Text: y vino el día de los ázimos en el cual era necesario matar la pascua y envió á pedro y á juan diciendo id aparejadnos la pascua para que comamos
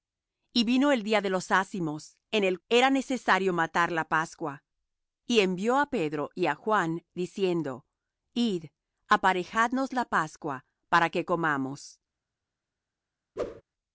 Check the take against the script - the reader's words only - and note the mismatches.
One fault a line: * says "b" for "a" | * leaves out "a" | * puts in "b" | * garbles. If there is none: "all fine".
* leaves out "cual"